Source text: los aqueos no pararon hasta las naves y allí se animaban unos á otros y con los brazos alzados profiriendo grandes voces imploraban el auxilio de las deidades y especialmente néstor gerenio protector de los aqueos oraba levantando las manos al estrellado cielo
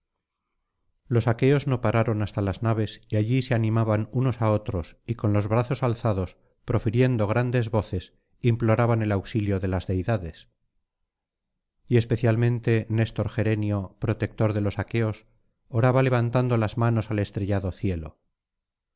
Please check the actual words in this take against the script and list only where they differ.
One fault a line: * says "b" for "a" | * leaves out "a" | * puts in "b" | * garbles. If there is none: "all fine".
all fine